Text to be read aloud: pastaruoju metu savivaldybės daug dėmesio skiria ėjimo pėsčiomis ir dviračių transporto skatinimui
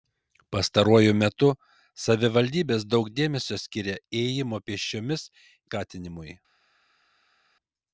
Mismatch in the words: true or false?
true